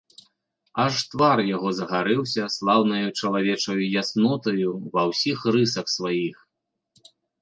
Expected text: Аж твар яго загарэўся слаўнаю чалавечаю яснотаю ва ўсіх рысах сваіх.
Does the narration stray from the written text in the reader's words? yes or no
no